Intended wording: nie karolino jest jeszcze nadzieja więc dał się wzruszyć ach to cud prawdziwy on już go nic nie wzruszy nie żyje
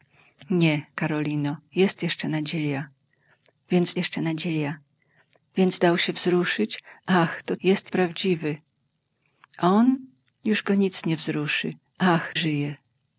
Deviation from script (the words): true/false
true